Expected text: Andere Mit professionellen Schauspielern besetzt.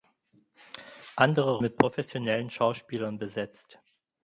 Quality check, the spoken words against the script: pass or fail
pass